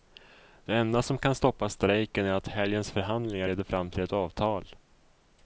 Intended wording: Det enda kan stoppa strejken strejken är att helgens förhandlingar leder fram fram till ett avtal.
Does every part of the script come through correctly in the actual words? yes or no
no